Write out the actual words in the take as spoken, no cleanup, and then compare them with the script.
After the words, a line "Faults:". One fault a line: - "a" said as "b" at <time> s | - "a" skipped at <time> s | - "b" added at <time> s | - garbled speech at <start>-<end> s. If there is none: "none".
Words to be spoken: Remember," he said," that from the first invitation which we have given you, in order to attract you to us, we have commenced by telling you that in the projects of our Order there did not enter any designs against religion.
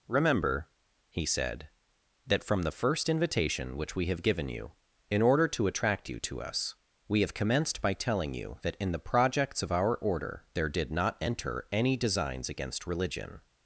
Remember," he said," that from the first invitation which we have given you, in order to attract you to us, we have commenced by telling you that in the projects of our Order there did not enter any designs against religion.
Faults:
none